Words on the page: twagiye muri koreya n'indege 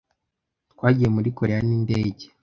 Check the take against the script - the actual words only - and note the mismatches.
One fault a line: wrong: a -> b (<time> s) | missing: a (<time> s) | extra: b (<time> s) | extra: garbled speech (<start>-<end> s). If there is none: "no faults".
no faults